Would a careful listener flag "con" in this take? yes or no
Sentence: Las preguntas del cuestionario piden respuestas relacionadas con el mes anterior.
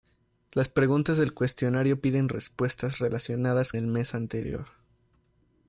yes